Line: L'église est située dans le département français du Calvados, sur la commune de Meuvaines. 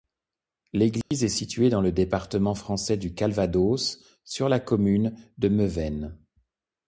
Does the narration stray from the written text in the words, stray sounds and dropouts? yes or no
yes